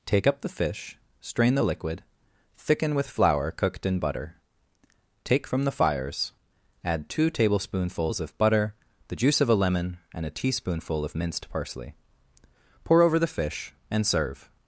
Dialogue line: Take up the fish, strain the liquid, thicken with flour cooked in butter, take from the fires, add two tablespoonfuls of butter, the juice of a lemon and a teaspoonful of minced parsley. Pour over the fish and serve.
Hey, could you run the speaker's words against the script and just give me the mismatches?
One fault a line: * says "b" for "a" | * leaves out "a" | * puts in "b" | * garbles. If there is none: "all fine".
all fine